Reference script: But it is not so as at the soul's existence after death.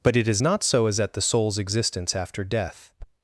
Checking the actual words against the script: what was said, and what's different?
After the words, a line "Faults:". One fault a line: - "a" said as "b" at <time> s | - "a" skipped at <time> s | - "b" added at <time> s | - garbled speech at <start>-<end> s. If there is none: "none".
But it is not so as at the soul's existence after death.
Faults:
none